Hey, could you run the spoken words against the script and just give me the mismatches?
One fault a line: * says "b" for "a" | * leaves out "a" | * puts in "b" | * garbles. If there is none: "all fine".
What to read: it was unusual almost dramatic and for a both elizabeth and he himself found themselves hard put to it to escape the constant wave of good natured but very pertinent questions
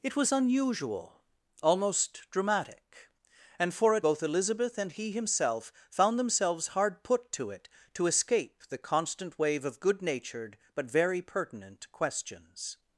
all fine